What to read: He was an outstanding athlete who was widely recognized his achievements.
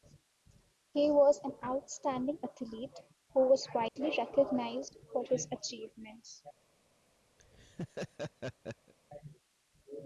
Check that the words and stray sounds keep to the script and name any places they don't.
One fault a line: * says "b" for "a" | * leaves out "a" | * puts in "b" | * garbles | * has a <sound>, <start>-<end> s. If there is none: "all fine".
* has a dropout, 3.9-4.0 s
* puts in "for"
* has a laugh, 7.4-8.9 s